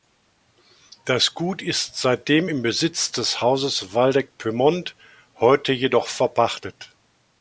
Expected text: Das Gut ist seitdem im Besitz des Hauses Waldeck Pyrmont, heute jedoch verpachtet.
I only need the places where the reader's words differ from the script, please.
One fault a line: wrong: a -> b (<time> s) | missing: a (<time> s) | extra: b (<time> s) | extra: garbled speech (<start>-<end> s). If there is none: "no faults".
no faults